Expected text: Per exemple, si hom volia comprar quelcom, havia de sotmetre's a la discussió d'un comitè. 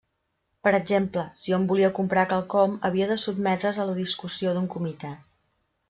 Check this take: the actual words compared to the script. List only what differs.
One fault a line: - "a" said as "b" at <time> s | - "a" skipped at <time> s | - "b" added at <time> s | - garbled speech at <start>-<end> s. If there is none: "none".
none